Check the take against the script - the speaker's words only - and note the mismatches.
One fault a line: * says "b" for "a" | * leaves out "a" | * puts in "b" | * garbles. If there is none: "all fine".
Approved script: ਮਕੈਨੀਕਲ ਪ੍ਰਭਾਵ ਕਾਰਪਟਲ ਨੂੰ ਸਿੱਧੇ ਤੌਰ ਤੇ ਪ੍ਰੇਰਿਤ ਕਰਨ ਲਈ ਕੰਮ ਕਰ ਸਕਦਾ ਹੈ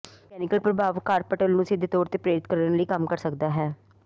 all fine